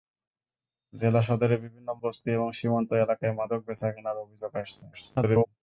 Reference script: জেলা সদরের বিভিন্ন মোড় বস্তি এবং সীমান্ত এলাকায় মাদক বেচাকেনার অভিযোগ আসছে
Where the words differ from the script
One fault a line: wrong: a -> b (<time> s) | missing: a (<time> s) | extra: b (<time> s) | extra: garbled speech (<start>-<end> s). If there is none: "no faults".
missing: মোড় (1.9 s)
extra: garbled speech (4.9-5.5 s)